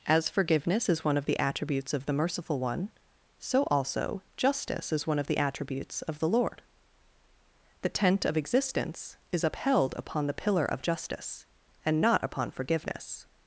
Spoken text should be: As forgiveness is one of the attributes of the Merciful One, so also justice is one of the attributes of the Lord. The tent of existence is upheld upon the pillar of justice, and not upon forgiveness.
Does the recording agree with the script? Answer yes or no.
yes